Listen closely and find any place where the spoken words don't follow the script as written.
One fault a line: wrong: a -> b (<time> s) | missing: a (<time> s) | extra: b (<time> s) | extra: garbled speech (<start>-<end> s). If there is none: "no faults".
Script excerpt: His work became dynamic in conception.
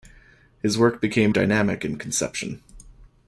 no faults